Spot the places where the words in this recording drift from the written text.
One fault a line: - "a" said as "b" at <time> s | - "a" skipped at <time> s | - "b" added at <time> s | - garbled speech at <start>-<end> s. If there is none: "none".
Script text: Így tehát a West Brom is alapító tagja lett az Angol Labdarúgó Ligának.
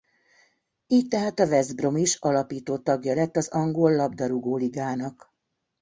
none